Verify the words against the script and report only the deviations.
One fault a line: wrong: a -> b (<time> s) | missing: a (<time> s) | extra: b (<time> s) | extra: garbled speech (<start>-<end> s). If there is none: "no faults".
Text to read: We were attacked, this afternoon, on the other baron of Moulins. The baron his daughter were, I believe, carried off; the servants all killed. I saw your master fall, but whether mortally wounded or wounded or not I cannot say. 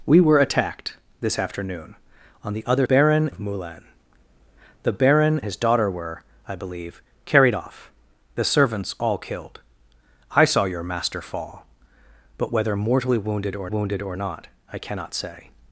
no faults